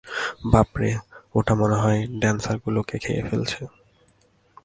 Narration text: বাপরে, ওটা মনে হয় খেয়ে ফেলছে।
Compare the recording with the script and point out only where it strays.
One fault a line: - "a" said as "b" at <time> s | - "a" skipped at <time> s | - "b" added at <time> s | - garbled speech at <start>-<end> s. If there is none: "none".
- "ড্যান্সারগুলোকে" added at 2.2 s